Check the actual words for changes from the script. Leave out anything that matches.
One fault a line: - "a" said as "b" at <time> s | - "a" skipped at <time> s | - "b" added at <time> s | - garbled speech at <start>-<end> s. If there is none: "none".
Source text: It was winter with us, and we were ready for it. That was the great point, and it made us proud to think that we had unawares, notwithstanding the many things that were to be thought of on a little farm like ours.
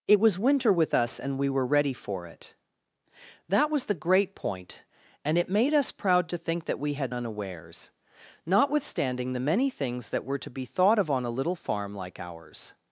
none